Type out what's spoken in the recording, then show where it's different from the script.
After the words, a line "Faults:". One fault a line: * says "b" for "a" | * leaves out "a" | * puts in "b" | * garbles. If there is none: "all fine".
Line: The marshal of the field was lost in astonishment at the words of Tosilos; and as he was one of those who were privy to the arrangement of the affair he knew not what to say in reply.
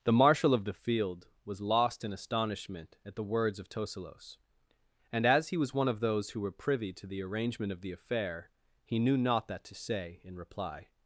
The marshal of the field was lost in astonishment at the words of Tosilos; and as he was one of those who were privy to the arrangement of the affair he knew not that to say in reply.
Faults:
* says "that" for "what"